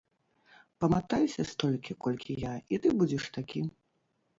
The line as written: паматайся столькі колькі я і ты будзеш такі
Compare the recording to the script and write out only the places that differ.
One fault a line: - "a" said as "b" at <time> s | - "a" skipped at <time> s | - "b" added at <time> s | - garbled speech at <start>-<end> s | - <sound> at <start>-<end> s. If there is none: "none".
none